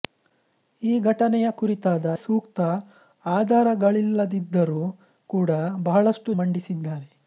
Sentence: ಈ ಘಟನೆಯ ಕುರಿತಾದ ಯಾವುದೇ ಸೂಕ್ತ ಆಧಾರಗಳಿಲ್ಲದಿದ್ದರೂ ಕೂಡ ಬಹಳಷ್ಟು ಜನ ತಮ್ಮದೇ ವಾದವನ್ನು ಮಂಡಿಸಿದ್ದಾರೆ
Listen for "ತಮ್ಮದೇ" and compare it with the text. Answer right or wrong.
wrong